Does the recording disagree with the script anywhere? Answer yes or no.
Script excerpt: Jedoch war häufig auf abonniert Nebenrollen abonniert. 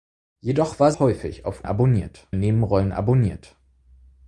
no